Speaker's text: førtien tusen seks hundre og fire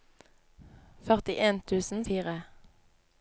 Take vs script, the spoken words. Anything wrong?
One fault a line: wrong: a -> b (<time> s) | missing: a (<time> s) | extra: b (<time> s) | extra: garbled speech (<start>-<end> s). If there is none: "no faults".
missing: seks hundre og (2.0 s)